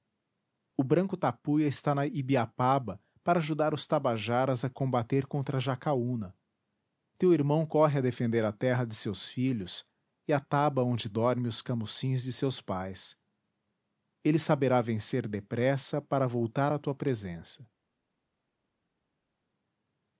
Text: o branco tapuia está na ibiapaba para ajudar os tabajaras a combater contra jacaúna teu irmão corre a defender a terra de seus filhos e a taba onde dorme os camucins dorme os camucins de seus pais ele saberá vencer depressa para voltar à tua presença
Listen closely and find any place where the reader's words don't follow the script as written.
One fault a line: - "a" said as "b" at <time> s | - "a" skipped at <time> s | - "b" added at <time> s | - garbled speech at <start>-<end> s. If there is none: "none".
- "dorme os camucins" skipped at 12.2 s